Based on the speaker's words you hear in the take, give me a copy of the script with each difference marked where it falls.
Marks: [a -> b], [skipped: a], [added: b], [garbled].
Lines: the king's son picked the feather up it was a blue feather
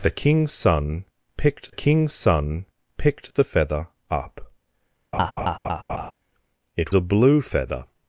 the king's son picked [added: king's son picked] the feather up it [skipped: was] a blue feather